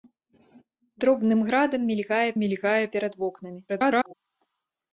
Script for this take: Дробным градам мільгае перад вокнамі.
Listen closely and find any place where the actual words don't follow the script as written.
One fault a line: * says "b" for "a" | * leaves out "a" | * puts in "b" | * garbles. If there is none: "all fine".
* puts in "мільгае"
* garbles